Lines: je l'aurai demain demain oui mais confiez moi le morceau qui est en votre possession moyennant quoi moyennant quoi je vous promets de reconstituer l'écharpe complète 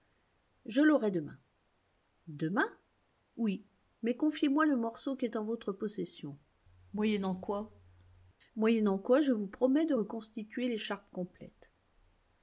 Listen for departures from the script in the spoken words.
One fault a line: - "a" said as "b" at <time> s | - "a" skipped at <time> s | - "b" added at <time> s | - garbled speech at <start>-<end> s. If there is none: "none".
none